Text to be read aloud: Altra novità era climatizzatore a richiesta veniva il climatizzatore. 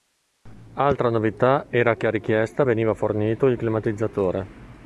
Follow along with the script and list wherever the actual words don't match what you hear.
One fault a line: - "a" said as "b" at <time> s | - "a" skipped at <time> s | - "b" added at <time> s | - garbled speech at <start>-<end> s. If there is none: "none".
- "climatizzatore" said as "che" at 1.9 s
- "fornito" added at 2.9 s